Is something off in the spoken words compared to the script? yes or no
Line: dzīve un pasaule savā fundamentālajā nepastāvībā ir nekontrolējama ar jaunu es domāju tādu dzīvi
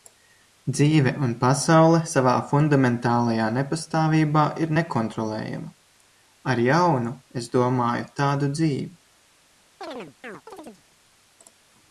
no